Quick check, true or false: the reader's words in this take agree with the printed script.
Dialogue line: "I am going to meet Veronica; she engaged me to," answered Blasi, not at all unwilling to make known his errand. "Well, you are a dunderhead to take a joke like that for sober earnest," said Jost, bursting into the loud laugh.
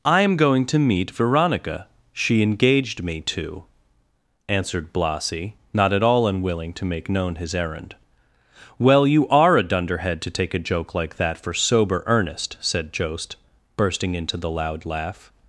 true